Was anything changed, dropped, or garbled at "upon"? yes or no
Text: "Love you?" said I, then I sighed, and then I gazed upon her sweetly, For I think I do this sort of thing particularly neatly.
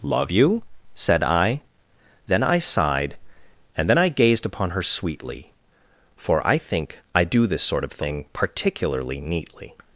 no